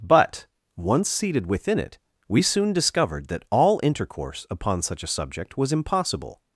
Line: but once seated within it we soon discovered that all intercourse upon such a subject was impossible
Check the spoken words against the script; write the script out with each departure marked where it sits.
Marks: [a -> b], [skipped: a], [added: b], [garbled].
but once seated within it we soon discovered that all intercourse upon such a subject was impossible